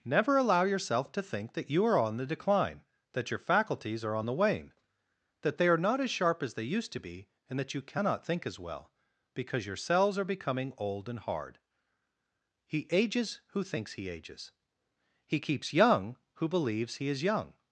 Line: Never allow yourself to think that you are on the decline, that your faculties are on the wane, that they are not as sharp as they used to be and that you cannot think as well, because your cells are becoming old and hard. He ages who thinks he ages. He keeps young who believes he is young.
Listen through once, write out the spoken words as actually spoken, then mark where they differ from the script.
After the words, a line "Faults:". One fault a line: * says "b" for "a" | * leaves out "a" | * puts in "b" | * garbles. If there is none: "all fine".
Never allow yourself to think that you are on the decline, that your faculties are on the wane, that they are not as sharp as they used to be and that you cannot think as well, because your cells are becoming old and hard. He ages who thinks he ages. He keeps young who believes he is young.
Faults:
all fine